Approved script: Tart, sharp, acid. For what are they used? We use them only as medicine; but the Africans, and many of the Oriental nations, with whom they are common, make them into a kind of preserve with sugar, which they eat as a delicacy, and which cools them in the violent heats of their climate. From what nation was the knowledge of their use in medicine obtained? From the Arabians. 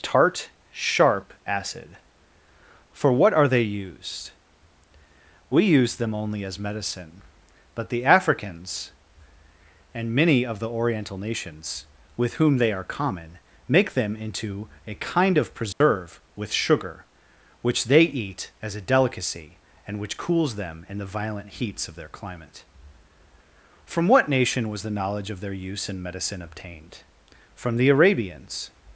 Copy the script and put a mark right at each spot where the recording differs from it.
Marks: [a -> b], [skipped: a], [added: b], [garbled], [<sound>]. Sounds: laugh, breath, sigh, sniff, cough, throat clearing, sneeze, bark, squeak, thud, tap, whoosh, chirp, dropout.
Tart, sharp, acid. For what are they used? We use them only as medicine; but the Africans, and many of the Oriental nations, with whom they are common, make them into a kind of preserve [dropout] with sugar, which they eat as a delicacy, and which cools them in the violent heats of their climate. From what nation was the knowledge of their use in medicine obtained? From the Arabians.